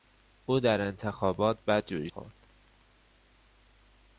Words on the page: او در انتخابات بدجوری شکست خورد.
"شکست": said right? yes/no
no